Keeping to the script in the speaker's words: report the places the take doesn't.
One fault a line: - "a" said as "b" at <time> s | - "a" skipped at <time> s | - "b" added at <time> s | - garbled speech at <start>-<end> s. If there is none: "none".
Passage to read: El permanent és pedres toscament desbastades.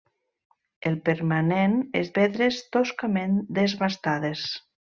none